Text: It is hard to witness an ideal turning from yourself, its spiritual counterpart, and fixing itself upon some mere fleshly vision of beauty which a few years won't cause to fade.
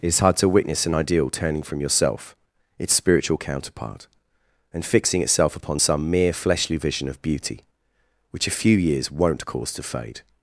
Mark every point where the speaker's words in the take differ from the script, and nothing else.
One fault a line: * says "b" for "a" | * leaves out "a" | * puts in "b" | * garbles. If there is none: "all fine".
all fine